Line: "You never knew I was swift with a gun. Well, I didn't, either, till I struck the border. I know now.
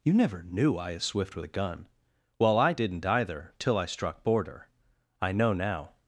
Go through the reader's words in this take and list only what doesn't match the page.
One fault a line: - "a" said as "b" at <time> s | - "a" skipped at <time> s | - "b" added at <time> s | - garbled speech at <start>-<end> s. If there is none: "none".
- "was" said as "is" at 0.9 s
- "the" skipped at 4.2 s